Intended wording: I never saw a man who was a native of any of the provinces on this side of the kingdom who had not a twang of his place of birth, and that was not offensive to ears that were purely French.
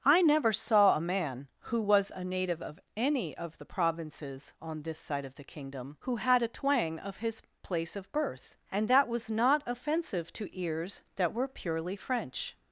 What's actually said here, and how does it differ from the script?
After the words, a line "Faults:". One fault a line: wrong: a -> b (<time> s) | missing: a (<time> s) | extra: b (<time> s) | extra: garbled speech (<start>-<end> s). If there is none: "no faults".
I never saw a man who was a native of any of the provinces on this side of the kingdom who had a twang of his place of birth, and that was not offensive to ears that were purely French.
Faults:
missing: not (6.4 s)